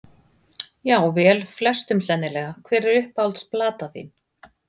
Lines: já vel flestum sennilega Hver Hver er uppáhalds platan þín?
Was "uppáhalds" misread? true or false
false